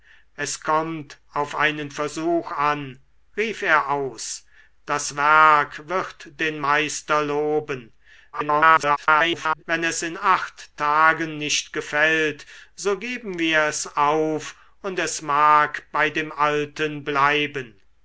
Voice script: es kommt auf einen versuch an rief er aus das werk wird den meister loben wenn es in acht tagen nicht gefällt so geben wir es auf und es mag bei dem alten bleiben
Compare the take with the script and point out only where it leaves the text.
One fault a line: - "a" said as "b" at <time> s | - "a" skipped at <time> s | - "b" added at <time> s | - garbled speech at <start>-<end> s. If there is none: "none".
- garbled speech at 8.3-9.6 s